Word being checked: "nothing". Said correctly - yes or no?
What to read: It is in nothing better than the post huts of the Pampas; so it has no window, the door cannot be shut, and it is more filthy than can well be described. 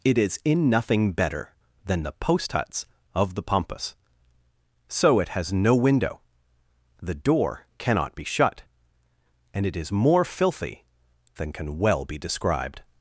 yes